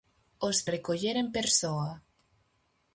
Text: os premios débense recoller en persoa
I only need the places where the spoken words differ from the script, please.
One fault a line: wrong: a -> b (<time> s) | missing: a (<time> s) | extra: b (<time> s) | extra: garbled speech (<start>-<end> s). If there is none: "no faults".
missing: premios débense (0.6 s)